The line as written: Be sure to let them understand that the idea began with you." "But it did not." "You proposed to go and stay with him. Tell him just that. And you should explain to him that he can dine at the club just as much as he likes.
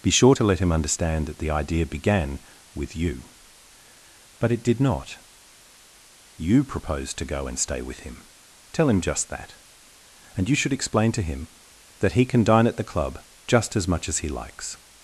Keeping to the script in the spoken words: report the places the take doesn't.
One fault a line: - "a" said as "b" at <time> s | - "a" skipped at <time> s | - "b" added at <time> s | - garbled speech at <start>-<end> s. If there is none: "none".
- "them" said as "him" at 0.6 s